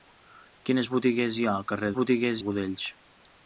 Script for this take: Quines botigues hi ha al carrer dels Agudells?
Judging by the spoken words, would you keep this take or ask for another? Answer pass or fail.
fail